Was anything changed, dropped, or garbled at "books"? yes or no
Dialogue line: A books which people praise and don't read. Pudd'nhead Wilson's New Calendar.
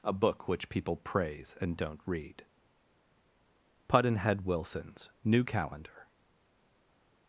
yes